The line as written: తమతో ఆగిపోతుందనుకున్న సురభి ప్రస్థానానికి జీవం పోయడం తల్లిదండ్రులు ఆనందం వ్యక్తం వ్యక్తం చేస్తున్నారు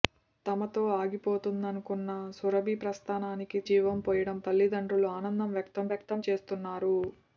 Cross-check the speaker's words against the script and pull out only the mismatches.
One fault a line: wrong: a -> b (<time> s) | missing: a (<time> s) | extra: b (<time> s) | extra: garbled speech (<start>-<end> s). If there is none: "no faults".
no faults